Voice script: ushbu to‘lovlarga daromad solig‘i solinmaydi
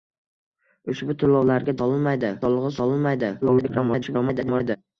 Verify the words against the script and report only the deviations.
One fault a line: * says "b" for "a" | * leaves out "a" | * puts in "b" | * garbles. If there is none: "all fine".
* says "solinmaydi" for "daromad"
* garbles